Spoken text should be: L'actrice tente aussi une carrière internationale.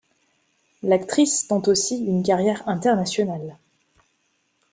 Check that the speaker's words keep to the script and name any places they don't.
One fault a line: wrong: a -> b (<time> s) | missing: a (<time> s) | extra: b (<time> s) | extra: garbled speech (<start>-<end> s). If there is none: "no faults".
no faults